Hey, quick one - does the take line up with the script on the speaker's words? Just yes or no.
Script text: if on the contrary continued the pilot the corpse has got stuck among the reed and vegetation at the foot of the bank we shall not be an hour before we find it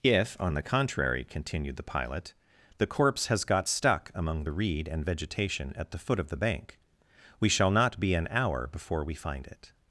yes